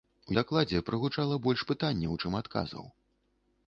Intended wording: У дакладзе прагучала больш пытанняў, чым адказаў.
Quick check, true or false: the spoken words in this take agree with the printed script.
true